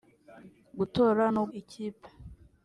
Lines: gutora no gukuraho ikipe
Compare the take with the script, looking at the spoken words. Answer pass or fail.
fail